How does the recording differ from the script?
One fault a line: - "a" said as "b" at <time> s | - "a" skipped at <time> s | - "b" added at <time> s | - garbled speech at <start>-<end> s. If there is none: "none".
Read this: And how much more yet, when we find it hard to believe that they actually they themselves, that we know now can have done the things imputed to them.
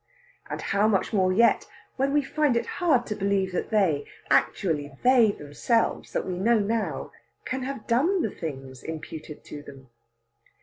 none